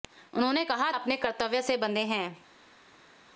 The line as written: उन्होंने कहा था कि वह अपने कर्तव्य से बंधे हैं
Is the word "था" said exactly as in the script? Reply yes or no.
no